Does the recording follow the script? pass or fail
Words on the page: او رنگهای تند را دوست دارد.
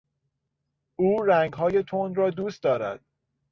pass